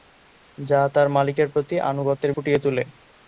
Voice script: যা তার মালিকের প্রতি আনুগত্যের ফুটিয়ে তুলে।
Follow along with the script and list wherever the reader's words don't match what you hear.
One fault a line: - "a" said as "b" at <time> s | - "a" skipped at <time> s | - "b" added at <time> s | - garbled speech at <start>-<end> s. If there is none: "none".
none